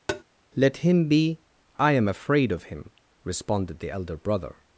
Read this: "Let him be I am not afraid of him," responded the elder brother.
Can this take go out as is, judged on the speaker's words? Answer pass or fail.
fail